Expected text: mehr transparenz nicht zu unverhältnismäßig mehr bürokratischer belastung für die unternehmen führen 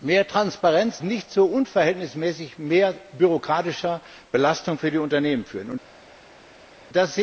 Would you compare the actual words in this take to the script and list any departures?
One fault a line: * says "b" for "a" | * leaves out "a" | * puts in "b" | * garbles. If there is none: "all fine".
all fine